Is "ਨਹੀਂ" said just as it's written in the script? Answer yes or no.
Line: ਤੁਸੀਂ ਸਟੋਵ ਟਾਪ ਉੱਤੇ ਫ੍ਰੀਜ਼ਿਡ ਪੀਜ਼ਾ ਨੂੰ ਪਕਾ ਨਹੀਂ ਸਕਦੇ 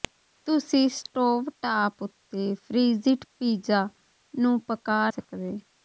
no